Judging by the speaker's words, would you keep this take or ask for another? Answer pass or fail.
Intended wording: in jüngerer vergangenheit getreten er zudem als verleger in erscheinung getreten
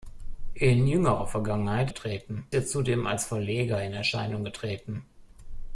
pass